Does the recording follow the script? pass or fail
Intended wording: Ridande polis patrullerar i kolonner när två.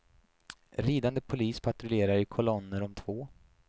fail